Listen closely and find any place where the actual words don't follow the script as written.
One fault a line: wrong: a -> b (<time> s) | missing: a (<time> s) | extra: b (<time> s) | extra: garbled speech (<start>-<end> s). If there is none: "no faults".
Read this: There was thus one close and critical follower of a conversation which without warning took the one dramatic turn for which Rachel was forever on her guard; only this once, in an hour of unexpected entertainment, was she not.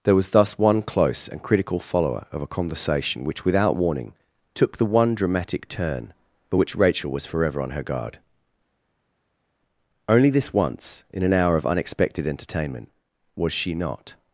no faults